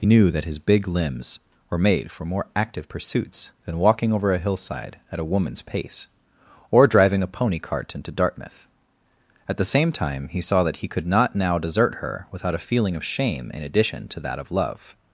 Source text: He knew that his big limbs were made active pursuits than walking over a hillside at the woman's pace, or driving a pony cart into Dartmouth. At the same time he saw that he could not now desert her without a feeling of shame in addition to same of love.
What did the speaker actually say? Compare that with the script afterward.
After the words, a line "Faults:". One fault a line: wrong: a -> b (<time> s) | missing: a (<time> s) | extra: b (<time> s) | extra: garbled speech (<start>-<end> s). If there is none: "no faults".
He knew that his big limbs were made for more active pursuits than walking over a hillside at a woman's pace, or driving a pony cart into Dartmouth. At the same time he saw that he could not now desert her without a feeling of shame in addition to that of love.
Faults:
extra: for more (2.1 s)
wrong: the -> a (5.2 s)
wrong: same -> that (14.2 s)